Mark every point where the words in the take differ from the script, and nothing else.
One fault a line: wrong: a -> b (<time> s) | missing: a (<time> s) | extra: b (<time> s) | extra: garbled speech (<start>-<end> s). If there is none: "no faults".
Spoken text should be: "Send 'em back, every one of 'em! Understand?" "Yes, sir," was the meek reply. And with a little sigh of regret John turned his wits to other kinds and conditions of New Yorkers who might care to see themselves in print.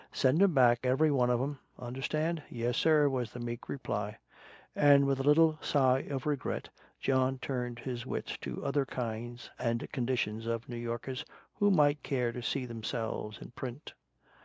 no faults